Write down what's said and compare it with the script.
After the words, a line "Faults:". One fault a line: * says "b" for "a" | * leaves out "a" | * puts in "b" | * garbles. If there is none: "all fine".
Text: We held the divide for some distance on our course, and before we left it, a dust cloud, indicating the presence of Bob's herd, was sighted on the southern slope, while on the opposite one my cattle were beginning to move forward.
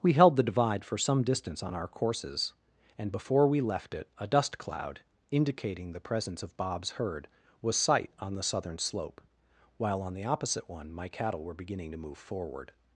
We held the divide for some distance on our courses, and before we left it, a dust cloud, indicating the presence of Bob's herd, was sight on the southern slope, while on the opposite one my cattle were beginning to move forward.
Faults:
* says "courses" for "course"
* says "sight" for "sighted"